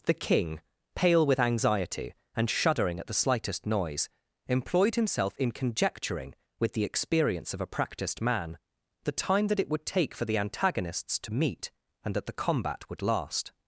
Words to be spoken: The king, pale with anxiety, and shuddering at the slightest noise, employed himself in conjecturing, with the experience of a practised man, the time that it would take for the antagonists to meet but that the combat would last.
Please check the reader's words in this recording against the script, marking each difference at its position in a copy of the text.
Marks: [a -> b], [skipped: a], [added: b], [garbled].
The king, pale with anxiety, and shuddering at the slightest noise, employed himself in conjecturing, with the experience of a practised man, the time that it would take for the antagonists to meet [but -> and] that the combat would last.